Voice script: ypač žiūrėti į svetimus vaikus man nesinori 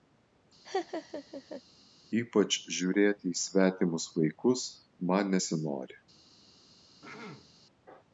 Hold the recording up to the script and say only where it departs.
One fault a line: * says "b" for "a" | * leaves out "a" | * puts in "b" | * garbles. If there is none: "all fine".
all fine